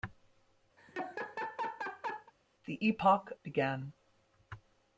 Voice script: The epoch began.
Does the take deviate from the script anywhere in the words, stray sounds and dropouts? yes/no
yes